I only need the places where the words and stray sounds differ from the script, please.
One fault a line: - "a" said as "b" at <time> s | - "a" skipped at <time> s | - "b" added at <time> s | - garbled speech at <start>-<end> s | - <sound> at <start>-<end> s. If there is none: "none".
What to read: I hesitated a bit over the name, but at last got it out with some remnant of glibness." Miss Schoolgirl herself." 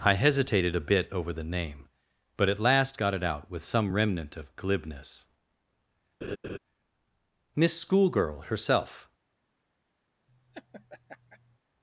- laugh at 6.2-6.6 s
- laugh at 10.3-11.6 s